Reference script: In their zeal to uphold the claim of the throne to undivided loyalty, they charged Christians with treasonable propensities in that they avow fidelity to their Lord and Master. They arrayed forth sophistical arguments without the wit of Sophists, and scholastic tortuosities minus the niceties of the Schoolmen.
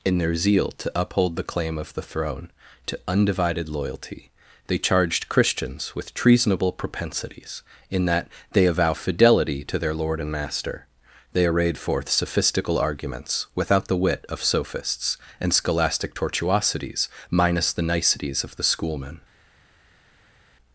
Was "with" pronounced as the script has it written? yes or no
yes